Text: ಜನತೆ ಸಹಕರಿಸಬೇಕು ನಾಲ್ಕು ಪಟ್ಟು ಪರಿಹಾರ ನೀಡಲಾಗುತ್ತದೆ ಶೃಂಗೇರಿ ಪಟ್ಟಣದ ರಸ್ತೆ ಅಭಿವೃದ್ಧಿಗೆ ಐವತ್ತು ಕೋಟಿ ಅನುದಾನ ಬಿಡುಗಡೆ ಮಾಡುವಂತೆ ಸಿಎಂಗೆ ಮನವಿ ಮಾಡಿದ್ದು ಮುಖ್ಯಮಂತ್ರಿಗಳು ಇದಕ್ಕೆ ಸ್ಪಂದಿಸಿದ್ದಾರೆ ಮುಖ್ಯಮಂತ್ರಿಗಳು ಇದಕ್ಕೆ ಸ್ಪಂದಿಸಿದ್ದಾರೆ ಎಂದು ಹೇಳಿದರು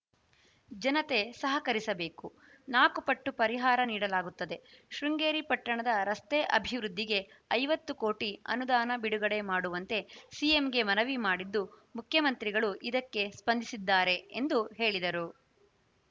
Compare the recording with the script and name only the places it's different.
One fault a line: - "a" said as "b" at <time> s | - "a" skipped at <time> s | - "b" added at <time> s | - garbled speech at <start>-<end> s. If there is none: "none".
- "ಮುಖ್ಯಮಂತ್ರಿಗಳು ಇದಕ್ಕೆ ಸ್ಪಂದಿಸಿದ್ದಾರೆ" skipped at 14.2 s